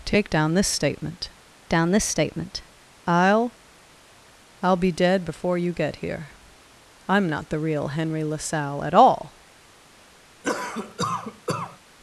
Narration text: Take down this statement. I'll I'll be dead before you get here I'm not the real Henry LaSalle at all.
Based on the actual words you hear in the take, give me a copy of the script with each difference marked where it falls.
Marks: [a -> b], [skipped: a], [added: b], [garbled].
Take down this statement. [added: down this statement] I'll I'll be dead before you get here I'm not the real Henry LaSalle at all.